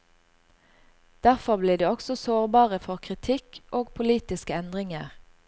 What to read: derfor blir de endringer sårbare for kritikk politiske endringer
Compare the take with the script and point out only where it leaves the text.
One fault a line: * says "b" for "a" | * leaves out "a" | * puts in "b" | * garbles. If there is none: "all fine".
* says "også" for "endringer"
* puts in "og"